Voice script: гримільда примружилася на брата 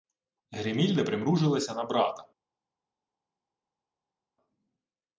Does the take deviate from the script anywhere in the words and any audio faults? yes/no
no